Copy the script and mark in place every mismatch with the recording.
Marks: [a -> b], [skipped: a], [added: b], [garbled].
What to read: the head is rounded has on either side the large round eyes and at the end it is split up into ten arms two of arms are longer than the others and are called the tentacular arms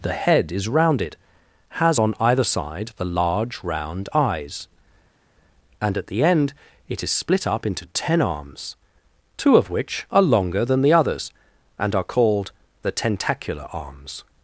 the head is rounded has on either side the large round eyes and at the end it is split up into ten arms two of [arms -> which] are longer than the others and are called the tentacular arms